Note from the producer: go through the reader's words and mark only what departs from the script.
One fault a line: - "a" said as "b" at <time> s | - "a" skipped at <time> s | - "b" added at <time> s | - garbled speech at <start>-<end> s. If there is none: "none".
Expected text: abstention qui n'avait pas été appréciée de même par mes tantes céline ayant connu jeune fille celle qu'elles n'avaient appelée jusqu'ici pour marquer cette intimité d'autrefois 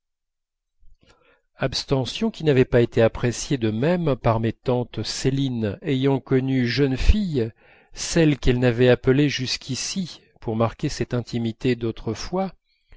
none